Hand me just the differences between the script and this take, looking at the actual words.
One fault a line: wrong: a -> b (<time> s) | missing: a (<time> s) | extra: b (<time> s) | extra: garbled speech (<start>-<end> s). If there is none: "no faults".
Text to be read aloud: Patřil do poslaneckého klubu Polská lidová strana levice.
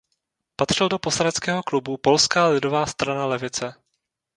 no faults